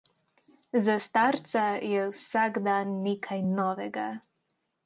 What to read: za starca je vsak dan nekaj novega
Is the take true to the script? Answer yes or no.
yes